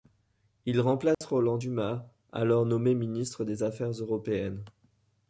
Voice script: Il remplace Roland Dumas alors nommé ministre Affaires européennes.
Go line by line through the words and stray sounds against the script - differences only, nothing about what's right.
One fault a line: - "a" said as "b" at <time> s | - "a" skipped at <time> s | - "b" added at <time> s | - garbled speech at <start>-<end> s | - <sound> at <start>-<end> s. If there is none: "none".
- dropout at 1.1-1.2 s
- "des" added at 3.5 s